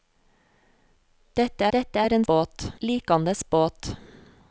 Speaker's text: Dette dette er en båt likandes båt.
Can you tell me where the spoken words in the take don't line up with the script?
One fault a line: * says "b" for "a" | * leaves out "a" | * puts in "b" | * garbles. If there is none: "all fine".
all fine